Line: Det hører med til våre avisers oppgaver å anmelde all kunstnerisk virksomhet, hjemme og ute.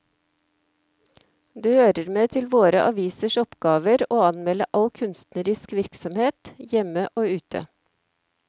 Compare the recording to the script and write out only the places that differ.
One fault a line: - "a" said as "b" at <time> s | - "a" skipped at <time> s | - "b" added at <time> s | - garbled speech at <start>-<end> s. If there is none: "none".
none